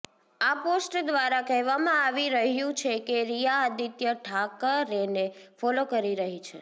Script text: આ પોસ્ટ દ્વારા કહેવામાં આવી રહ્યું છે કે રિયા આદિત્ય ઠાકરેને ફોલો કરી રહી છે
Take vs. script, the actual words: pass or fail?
pass